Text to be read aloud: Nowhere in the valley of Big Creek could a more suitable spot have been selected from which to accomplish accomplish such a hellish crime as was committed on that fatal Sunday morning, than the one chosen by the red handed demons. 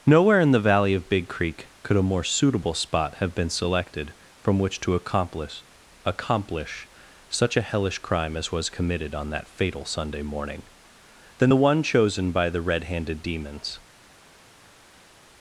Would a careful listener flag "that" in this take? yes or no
no